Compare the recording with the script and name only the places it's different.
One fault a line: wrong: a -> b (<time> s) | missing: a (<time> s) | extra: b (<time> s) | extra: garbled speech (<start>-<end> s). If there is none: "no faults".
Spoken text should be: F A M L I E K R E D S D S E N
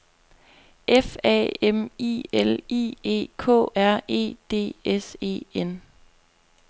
extra: I (2.0 s)
missing: D S (5.2 s)